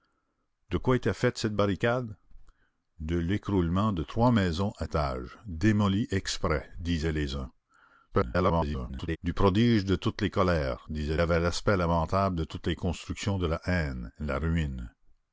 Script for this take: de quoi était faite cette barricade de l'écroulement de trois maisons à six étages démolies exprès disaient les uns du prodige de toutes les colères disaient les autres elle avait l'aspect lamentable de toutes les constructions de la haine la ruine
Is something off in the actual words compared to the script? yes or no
yes